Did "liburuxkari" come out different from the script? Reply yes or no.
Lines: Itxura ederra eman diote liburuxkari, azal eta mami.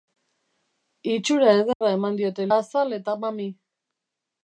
yes